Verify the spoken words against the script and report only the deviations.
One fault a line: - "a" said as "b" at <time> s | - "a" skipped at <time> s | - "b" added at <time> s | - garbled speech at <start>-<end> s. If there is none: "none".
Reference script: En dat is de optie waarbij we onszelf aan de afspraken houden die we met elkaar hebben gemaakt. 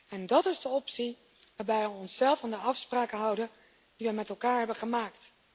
none